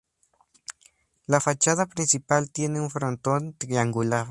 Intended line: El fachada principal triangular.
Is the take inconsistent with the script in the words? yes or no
yes